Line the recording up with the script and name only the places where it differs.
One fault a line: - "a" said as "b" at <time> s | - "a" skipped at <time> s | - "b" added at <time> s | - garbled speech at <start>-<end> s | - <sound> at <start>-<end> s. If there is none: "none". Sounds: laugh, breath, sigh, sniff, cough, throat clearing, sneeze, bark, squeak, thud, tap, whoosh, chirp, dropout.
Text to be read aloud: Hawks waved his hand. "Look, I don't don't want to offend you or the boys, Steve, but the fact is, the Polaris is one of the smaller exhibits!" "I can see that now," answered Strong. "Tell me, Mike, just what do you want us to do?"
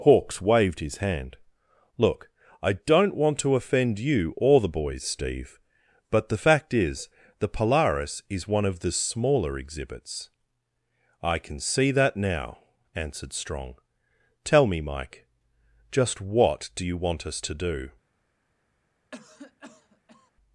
- "don't" skipped at 3.1 s
- cough at 19.1-20.3 s